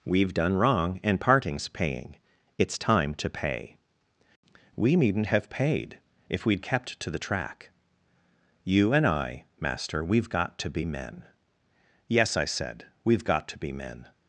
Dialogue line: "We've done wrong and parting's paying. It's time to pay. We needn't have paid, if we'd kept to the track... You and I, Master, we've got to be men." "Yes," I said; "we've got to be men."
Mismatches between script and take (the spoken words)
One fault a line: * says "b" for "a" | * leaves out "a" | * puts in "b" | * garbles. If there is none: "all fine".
all fine